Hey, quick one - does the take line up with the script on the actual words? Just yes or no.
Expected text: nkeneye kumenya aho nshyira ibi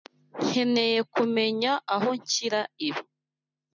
yes